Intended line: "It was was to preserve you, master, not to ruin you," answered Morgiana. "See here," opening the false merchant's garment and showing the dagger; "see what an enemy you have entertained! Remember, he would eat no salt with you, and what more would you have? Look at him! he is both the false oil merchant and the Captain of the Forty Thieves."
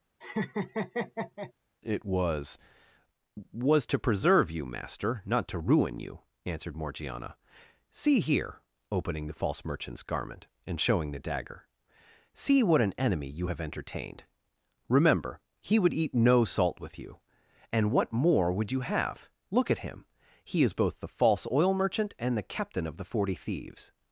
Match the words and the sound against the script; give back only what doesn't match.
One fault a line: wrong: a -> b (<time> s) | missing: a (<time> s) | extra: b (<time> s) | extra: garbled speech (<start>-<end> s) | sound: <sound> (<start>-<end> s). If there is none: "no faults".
sound: laugh (0.2-1.5 s)